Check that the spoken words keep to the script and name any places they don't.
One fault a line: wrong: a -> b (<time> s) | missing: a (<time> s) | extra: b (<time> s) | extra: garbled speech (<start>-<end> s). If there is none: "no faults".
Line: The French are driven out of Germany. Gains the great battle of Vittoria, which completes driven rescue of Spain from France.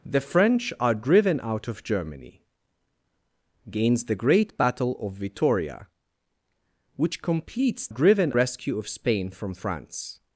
no faults